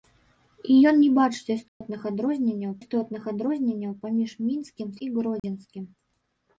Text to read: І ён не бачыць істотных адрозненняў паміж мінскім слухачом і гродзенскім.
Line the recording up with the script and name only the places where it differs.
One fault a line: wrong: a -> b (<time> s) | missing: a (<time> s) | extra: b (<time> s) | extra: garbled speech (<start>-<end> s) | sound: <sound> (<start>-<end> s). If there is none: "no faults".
sound: dropout (1.7-1.8 s)
extra: істотных адрозненняў (2.8 s)
missing: слухачом (4.9 s)
sound: dropout (5.4-5.4 s)